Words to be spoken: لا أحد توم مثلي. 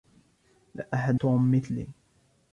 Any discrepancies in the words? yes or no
no